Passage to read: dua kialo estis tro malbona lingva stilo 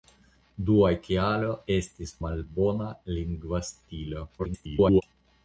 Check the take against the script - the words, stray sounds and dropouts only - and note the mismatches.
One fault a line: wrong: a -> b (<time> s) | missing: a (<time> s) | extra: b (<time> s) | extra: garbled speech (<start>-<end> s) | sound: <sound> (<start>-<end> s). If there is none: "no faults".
missing: tro (2.1 s)
extra: garbled speech (4.4-5.0 s)